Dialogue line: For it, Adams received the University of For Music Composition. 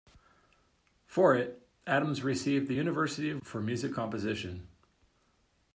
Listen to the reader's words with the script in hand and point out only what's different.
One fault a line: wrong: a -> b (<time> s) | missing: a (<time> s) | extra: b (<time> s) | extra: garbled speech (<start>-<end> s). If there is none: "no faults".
no faults